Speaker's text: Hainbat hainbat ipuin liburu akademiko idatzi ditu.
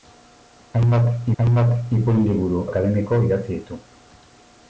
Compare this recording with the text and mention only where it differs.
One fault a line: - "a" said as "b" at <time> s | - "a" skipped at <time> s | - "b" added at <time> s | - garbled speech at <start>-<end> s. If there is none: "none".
none